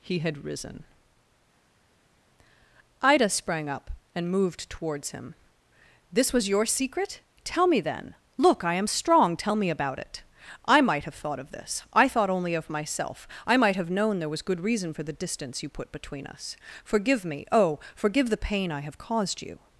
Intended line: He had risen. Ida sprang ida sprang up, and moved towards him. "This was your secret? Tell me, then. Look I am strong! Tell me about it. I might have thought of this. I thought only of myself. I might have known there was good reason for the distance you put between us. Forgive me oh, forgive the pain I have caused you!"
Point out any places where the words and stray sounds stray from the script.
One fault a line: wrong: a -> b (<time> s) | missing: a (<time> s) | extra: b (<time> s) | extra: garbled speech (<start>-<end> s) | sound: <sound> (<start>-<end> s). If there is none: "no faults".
missing: ida sprang (3.7 s)